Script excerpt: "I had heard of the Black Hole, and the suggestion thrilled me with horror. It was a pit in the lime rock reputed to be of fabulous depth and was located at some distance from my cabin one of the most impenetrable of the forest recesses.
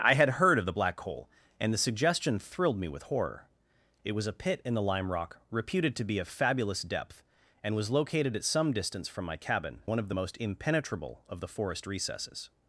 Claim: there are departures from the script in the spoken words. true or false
false